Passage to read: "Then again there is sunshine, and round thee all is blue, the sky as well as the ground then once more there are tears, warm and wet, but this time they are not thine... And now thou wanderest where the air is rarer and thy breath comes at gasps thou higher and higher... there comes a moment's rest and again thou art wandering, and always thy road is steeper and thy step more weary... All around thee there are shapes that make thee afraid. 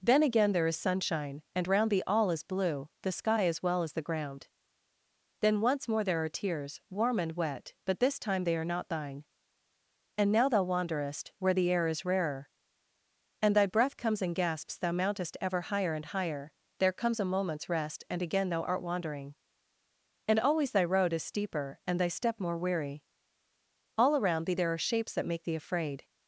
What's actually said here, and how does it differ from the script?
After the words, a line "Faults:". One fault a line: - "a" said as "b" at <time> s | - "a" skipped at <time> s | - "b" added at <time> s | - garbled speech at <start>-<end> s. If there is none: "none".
"Then again there is sunshine, and round thee all is blue, the sky as well as the ground then once more there are tears, warm and wet, but this time they are not thine... And now thou wanderest where the air is rarer and thy breath comes in gasps thou mountest ever higher and higher... there comes a moment's rest and again thou art wandering, and always thy road is steeper and thy step more weary... All around thee there are shapes that make thee afraid.
Faults:
- "at" said as "in" at 14.2 s
- "mountest ever" added at 14.9 s